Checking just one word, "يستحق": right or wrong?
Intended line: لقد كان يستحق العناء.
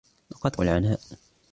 wrong